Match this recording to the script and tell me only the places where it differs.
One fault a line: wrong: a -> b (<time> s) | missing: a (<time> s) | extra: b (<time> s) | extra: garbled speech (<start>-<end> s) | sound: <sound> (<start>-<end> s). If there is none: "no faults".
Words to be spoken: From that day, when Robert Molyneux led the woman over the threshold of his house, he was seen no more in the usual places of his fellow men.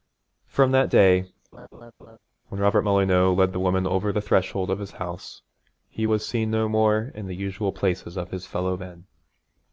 sound: laugh (1.5-2.2 s)